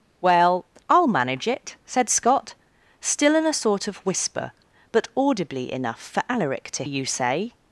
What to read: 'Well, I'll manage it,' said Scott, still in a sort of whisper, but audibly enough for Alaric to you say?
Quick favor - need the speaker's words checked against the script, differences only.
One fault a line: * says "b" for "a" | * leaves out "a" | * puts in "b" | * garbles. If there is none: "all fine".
all fine